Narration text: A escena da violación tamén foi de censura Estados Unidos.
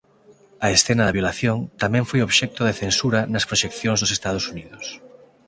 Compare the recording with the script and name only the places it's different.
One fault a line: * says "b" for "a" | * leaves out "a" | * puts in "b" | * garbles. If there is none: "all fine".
* puts in "obxecto"
* puts in "nas proxeccións dos"